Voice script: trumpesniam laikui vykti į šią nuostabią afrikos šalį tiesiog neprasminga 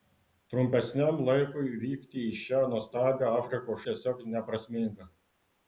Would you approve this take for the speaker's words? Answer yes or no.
no